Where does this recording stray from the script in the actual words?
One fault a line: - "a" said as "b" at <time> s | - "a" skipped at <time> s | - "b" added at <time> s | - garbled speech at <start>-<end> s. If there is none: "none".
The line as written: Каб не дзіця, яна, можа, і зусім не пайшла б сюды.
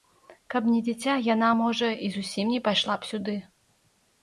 none